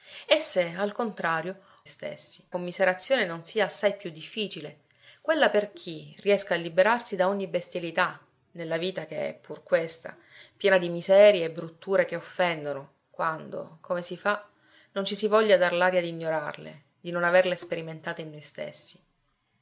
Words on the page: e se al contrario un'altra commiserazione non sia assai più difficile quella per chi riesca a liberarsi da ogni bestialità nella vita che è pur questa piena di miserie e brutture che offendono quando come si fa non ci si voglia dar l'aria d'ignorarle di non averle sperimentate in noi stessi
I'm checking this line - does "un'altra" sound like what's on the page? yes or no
no